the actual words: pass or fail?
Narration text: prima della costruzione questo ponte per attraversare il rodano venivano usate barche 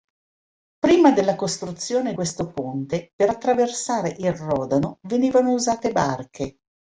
pass